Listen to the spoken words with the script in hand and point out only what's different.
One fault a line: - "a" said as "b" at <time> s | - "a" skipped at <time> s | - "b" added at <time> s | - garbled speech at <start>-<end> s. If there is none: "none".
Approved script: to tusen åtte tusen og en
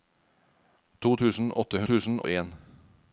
none